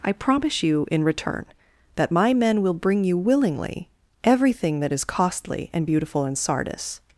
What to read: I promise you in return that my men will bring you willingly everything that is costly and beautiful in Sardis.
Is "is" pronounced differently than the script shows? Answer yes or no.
no